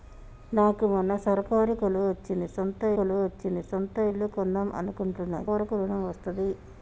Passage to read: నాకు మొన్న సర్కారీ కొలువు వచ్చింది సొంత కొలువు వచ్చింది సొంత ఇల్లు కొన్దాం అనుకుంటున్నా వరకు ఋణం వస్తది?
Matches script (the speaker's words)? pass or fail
pass